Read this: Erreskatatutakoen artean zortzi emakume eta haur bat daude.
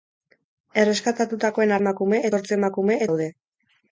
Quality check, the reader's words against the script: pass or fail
fail